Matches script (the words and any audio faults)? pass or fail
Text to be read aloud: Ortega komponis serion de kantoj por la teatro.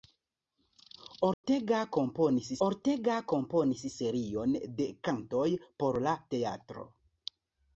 fail